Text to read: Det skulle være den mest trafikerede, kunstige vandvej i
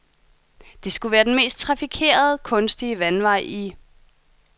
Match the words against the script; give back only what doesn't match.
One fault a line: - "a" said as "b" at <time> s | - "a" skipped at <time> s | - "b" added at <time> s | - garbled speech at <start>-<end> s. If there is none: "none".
none